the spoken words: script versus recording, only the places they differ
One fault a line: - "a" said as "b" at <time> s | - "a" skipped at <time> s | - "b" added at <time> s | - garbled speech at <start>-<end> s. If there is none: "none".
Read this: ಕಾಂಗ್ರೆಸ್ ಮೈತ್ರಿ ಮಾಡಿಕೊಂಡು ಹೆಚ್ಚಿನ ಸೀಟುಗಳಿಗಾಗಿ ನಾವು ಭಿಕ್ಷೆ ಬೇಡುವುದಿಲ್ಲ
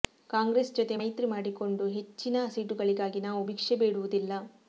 - "ಜೊತೆ" added at 0.8 s